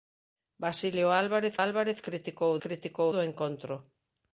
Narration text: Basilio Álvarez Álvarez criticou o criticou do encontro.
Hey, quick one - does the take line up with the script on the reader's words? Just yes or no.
yes